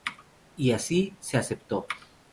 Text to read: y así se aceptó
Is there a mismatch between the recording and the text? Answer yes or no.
no